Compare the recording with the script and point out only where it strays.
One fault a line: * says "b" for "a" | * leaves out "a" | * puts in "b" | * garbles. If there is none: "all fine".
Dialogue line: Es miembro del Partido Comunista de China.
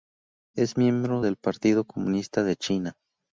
all fine